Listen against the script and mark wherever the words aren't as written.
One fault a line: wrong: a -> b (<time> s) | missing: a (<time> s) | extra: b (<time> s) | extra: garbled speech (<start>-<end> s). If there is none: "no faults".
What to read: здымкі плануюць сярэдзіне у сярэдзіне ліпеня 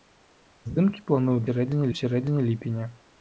no faults